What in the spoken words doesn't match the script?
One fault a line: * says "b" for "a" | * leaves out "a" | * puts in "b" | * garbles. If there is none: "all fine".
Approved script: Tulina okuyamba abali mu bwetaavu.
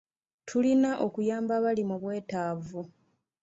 all fine